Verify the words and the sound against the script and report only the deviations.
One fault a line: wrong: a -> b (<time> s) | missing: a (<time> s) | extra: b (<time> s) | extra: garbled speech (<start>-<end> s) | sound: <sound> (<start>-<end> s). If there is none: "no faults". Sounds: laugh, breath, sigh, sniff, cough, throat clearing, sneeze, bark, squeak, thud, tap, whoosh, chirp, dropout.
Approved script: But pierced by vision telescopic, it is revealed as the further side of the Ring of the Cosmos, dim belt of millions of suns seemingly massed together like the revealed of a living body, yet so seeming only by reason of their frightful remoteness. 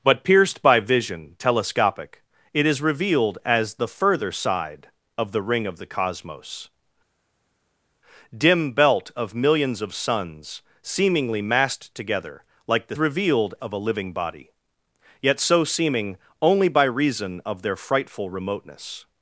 no faults